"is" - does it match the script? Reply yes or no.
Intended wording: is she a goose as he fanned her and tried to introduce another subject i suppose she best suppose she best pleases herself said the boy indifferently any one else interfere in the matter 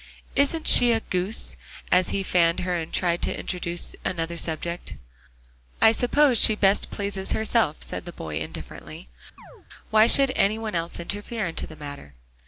no